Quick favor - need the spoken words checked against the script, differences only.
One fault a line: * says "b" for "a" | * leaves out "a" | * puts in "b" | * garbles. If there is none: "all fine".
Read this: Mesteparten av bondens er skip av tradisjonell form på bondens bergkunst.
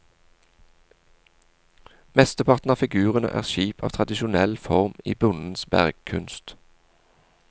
* says "figurene" for "bondens"
* says "i" for "på"